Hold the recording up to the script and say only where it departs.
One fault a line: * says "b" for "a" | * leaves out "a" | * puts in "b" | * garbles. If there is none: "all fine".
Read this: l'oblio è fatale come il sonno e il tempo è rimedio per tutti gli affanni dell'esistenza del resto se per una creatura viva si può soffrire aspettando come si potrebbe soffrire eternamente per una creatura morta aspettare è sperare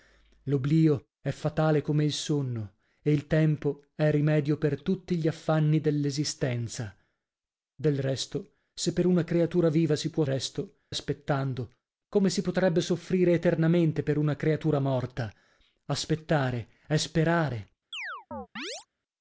* says "resto" for "soffrire"